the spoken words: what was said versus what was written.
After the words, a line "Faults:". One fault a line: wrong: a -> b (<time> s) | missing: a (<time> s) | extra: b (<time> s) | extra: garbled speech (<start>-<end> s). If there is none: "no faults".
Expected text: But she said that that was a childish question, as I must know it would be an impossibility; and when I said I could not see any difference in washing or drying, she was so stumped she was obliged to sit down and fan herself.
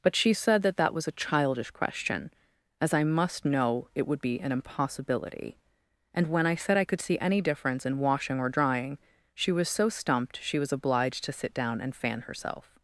But she said that that was a childish question, as I must know it would be an impossibility; and when I said I could see any difference in washing or drying, she was so stumped she was obliged to sit down and fan herself.
Faults:
missing: not (7.0 s)